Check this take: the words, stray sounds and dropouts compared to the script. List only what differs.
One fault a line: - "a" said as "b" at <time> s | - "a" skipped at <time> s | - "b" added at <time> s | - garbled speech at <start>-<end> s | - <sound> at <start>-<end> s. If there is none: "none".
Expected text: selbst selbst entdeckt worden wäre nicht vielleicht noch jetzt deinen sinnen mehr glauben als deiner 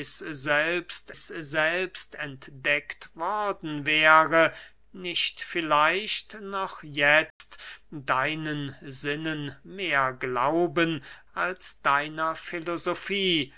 - dropout at 7.3-7.4 s